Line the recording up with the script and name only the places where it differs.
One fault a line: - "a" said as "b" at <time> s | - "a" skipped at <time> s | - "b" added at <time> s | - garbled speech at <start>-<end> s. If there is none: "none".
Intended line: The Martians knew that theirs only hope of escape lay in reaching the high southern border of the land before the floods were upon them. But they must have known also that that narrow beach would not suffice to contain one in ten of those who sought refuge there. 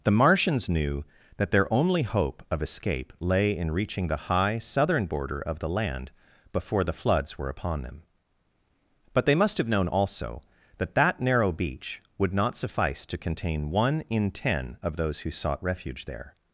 - "theirs" said as "their" at 1.5 s